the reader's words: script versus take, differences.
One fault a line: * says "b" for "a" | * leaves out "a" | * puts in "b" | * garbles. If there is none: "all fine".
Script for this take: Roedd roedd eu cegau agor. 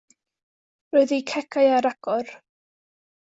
* leaves out "roedd"
* puts in "ar"